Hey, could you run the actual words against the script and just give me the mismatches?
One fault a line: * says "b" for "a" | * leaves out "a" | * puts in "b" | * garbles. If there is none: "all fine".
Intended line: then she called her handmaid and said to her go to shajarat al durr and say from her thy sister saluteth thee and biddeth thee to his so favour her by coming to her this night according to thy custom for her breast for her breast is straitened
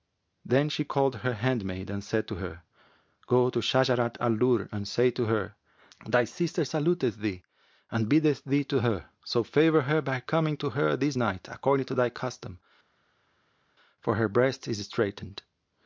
* says "to" for "from"
* says "her" for "his"
* leaves out "for her breast"